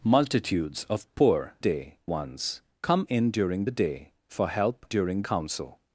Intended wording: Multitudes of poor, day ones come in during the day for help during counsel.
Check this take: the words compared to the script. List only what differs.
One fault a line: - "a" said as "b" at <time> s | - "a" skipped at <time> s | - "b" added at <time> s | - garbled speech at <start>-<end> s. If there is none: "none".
none